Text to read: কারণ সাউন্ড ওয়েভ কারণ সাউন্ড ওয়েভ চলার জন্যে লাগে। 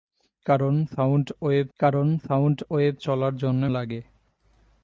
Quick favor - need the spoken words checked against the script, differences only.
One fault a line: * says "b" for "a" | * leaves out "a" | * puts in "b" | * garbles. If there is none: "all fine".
all fine